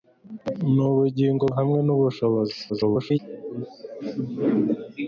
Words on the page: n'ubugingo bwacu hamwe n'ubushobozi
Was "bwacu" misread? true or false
true